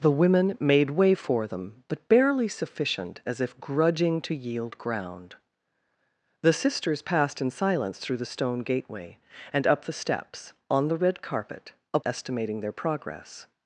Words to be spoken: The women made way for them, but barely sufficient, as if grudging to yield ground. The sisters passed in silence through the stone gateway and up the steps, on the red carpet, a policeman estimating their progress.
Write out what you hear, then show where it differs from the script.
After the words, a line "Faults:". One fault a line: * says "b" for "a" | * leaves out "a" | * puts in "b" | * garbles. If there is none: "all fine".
The women made way for them, but barely sufficient, as if grudging to yield ground. The sisters passed in silence through the stone gateway and up the steps, on the red carpet, a estimating their progress.
Faults:
* leaves out "policeman"